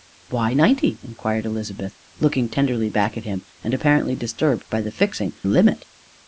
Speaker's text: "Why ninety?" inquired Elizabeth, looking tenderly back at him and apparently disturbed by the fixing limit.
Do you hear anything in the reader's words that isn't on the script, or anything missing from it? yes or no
no